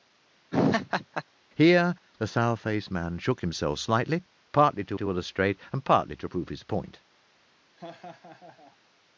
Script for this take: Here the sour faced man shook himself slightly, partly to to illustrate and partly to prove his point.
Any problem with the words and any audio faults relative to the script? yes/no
yes